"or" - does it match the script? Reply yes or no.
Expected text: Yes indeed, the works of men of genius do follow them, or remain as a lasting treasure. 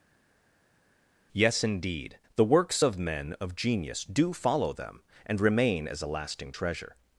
no